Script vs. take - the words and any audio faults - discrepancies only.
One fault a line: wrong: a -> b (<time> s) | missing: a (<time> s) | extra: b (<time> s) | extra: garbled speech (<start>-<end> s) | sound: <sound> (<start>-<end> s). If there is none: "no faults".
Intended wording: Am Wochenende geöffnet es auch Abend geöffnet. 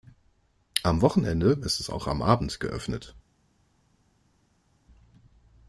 wrong: geöffnet -> ist (1.6 s)
extra: am (2.1 s)